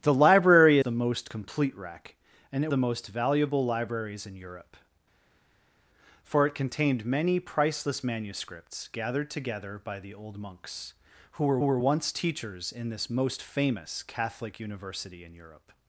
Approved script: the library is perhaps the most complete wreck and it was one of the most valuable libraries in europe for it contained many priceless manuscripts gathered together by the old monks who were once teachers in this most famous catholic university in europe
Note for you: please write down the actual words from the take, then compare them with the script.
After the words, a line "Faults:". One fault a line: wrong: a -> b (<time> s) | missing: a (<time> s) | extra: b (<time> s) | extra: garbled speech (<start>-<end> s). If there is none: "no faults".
the library the most complete wreck and it the most valuable libraries in europe for it contained many priceless manuscripts gathered together by the old monks who were were once teachers in this most famous catholic university in europe
Faults:
missing: is perhaps (0.8 s)
missing: was one of (2.7 s)
extra: were (11.6 s)